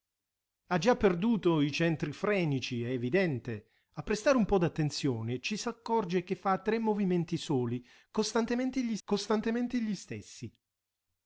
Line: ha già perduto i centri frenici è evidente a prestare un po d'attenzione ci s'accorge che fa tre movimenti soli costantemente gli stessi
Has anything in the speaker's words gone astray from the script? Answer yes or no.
yes